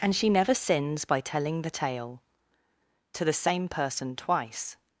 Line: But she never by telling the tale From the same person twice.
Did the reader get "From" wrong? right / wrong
wrong